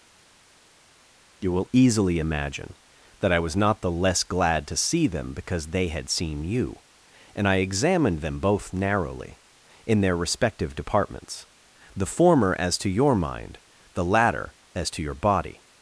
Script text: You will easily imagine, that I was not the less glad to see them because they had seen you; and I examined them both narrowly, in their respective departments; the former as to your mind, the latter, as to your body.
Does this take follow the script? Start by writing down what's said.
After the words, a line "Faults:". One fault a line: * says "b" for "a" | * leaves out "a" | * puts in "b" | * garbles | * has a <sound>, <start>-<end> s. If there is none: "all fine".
You will easily imagine, that I was not the less glad to see them because they had seen you; and I examined them both narrowly, in their respective departments; the former as to your mind, the latter, as to your body.
Faults:
all fine